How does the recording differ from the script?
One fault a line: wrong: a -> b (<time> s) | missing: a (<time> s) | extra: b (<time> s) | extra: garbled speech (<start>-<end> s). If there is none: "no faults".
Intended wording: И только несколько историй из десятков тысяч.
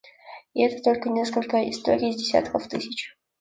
extra: это (0.6 s)